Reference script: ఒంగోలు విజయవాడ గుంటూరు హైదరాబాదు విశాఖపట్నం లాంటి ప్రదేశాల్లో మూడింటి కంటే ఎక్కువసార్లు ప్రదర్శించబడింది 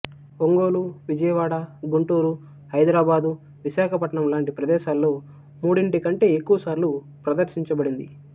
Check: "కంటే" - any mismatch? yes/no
no